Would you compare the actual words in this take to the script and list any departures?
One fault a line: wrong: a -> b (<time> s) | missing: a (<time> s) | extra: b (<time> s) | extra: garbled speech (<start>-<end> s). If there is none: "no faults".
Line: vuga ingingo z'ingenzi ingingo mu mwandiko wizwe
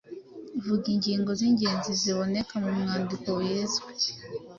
wrong: ingingo -> ziboneka (2.0 s)